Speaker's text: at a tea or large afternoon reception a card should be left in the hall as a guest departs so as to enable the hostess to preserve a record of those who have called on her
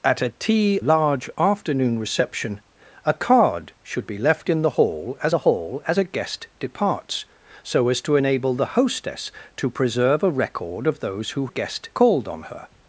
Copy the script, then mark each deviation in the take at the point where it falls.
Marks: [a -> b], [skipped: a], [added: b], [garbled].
at a tea [skipped: or] large afternoon reception a card should be left in the hall as [added: the hall as] a guest departs so as to enable the hostess to preserve a record of those who [have -> guest] called on her